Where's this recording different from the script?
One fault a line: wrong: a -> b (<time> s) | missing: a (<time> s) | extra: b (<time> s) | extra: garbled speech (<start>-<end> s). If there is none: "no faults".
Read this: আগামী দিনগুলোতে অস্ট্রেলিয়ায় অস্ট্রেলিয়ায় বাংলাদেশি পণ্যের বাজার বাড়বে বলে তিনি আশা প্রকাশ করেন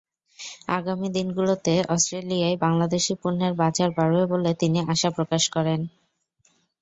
missing: অস্ট্রেলিয়ায় (2.6 s)